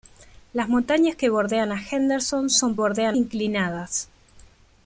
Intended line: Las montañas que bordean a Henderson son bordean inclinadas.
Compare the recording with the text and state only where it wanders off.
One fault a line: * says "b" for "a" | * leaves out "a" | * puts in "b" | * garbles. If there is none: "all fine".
all fine